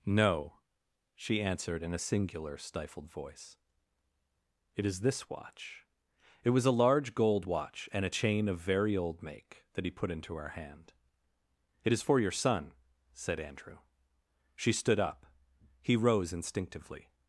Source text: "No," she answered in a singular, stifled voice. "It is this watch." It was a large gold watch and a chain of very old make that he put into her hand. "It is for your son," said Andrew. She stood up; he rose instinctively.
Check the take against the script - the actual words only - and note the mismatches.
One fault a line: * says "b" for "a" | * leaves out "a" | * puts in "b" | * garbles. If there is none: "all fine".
all fine